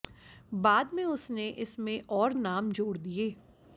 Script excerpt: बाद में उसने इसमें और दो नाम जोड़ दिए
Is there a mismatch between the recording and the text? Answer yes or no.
yes